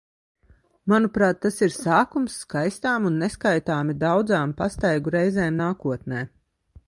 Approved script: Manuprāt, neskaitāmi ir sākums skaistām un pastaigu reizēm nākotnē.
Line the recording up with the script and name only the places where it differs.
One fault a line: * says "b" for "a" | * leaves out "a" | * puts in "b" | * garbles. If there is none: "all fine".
* says "tas" for "neskaitāmi"
* puts in "neskaitāmi daudzām"